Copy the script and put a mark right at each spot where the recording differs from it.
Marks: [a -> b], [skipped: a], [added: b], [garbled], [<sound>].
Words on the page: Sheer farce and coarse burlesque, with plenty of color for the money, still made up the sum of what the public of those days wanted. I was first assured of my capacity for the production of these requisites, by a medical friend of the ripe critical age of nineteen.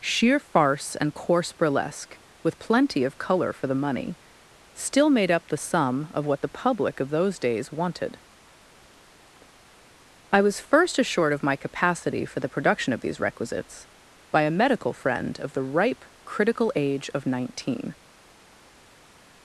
Sheer farce and coarse burlesque, with plenty of color for the money, still made up the sum of what the public of those days wanted. I was first assured of my capacity for the production of these requisites, by a medical friend of the ripe critical age of nineteen.